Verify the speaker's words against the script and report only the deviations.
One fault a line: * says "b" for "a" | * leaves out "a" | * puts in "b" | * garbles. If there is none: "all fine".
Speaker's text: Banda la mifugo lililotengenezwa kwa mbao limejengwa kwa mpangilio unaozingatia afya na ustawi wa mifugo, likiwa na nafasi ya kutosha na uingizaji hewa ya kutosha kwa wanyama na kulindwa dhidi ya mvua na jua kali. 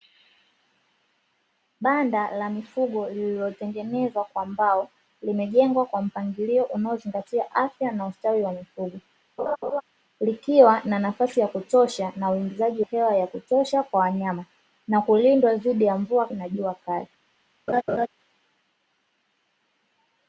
all fine